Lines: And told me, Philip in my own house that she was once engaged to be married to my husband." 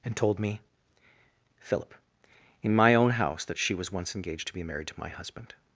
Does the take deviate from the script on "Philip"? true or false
false